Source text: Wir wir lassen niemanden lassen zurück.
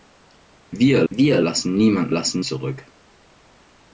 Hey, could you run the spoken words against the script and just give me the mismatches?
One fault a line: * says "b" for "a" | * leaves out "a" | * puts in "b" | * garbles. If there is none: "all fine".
all fine